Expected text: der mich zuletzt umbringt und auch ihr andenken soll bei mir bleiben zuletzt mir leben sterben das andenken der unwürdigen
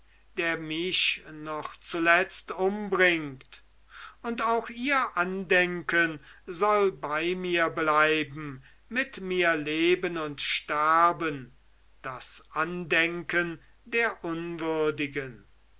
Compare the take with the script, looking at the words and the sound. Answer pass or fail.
fail